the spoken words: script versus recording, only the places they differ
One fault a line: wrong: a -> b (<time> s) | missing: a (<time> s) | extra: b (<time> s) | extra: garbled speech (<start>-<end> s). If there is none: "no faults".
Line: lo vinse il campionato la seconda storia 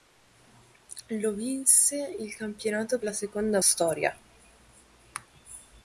no faults